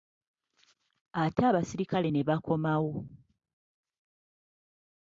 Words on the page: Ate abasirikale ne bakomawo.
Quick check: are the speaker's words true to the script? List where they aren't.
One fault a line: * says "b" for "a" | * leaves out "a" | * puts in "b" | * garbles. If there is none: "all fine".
all fine